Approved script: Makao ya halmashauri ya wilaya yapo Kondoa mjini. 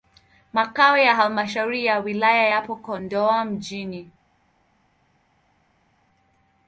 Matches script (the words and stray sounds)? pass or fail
pass